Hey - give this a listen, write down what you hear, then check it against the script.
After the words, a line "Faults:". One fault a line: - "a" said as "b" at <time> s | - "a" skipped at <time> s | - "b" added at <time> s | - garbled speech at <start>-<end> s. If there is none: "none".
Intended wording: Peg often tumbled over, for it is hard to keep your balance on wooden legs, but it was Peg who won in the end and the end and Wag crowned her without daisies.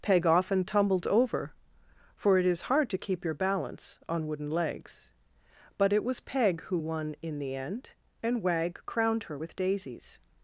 Peg often tumbled over, for it is hard to keep your balance on wooden legs, but it was Peg who won in the end and Wag crowned her with daisies.
Faults:
- "the end and" skipped at 8.4 s
- "without" said as "with" at 9.3 s